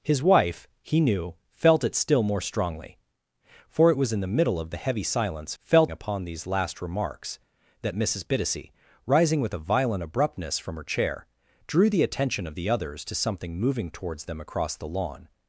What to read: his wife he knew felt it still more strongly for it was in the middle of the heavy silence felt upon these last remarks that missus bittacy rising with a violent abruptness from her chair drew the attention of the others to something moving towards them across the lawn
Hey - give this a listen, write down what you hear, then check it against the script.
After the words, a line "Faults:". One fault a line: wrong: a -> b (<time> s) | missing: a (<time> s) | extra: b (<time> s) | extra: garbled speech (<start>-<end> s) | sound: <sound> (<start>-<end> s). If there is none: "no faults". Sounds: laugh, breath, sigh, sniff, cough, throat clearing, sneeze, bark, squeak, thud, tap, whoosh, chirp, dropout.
his wife he knew felt it still more strongly for it was in the middle of the heavy silence felt upon these last remarks that missus bittacy rising with a violent abruptness from her chair drew the attention of the others to something moving towards them across the lawn
Faults:
no faults